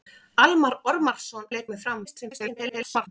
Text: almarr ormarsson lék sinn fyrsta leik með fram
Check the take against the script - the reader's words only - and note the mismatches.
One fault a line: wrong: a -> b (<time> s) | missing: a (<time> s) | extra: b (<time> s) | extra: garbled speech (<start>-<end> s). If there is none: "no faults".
missing: lék sinn fyrsta (1.5 s)
extra: garbled speech (2.0-3.1 s)